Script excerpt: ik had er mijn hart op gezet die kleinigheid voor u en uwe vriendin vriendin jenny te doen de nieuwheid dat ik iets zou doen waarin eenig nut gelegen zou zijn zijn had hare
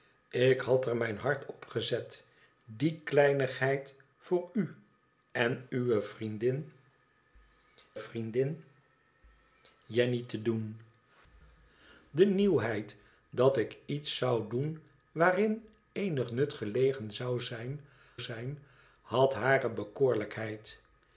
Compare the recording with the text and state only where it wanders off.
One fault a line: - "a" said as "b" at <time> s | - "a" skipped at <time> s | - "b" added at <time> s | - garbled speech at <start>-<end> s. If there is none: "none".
none